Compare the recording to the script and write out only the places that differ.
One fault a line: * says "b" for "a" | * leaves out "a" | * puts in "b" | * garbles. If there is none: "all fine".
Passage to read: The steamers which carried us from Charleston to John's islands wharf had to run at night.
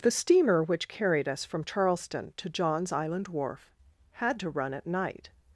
* says "steamer" for "steamers"
* says "island" for "islands"